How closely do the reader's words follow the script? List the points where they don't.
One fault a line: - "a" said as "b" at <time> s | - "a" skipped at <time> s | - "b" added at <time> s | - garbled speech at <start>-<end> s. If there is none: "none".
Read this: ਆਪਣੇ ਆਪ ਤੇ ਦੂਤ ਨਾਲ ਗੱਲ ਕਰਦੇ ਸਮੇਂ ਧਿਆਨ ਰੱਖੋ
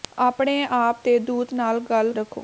- "ਕਰਦੇ ਸਮੇਂ ਧਿਆਨ" skipped at 2.1 s